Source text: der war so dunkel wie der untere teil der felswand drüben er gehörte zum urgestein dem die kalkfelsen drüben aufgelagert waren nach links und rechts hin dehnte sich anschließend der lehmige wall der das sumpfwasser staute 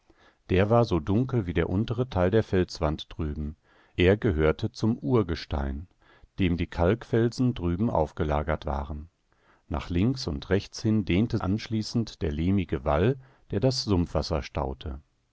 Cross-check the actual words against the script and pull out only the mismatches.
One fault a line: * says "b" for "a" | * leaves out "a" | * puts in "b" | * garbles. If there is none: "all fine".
* leaves out "sich"